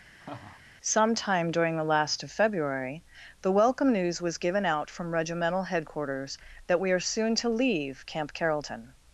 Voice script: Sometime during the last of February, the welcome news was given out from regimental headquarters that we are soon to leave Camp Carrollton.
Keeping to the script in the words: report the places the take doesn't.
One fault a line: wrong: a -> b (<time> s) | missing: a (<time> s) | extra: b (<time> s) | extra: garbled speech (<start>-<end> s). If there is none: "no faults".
no faults